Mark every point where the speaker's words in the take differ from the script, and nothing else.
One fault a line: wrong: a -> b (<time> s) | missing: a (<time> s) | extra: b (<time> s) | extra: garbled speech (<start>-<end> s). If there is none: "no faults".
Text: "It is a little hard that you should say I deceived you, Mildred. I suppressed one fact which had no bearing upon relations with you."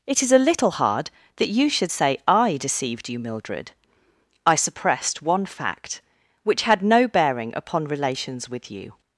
no faults